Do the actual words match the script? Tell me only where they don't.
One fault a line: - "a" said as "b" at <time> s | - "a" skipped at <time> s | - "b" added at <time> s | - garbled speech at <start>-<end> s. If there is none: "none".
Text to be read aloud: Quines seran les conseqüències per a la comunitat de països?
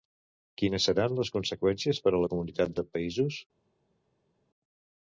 none